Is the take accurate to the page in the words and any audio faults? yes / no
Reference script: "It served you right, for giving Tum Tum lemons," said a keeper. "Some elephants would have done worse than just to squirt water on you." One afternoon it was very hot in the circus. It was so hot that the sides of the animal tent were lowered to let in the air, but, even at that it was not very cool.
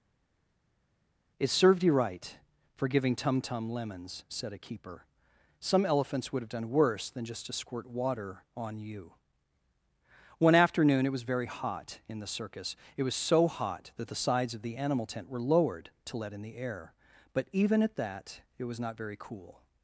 yes